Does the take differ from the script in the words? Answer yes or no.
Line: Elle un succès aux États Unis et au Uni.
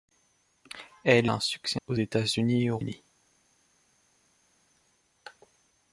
no